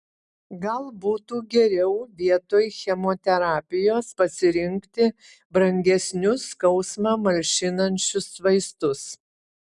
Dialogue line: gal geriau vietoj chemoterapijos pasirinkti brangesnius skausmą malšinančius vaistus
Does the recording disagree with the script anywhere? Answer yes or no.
yes